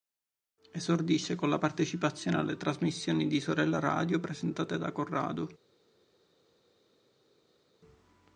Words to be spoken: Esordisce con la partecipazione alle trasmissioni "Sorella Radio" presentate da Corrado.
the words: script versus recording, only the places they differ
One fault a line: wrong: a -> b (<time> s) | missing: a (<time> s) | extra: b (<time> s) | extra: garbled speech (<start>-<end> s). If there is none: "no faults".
extra: di (3.3 s)